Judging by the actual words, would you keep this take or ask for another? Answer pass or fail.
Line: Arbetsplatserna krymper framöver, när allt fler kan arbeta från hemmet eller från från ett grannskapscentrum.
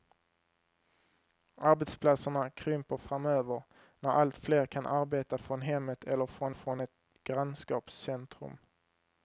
pass